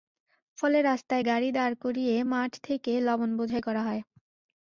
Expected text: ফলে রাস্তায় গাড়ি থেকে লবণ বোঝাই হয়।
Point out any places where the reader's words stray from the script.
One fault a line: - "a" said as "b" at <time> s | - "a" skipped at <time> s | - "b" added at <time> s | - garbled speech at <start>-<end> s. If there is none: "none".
- "দাঁড় করিয়ে মাঠ" added at 1.5 s
- "করা" added at 3.6 s